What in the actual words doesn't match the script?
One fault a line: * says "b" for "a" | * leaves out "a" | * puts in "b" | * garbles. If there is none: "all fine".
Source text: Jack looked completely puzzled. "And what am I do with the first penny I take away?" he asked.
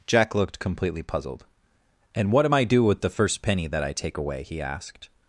* puts in "that"